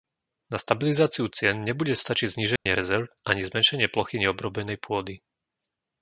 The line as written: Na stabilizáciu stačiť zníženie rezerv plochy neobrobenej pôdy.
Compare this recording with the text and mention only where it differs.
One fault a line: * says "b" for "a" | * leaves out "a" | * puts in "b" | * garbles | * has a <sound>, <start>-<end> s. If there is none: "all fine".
* puts in "cien nebude"
* has a dropout, 2.6-2.7 s
* puts in "ani zmenšenie"